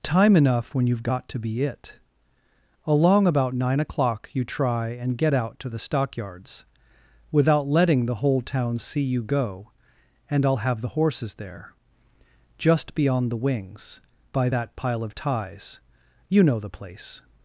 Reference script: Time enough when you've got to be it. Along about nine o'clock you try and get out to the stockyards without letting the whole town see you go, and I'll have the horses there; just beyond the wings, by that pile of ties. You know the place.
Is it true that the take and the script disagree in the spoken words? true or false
false